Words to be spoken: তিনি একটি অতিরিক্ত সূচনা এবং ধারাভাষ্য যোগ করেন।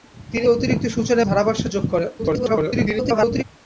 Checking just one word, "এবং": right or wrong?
wrong